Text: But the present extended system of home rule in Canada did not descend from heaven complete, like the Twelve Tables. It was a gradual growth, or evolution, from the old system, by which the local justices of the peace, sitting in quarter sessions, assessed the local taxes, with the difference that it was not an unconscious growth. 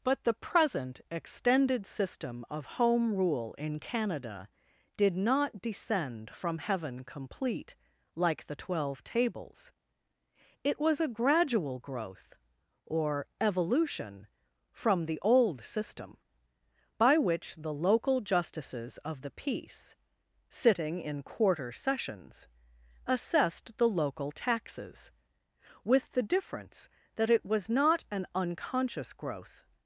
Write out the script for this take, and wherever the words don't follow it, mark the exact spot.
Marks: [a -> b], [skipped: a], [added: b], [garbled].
But the present extended system of home rule in Canada did not descend from heaven complete, like the Twelve Tables. It was a gradual growth, or evolution, from the old system, by which the local justices of the peace, sitting in quarter sessions, assessed the local taxes, with the difference that it was not an unconscious growth.